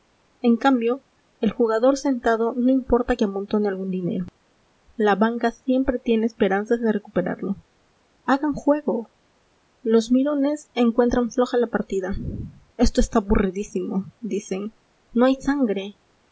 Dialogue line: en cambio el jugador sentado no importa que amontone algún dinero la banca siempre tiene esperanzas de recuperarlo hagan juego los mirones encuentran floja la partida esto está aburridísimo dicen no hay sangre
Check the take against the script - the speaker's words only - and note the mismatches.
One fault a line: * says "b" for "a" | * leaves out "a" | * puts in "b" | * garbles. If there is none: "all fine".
all fine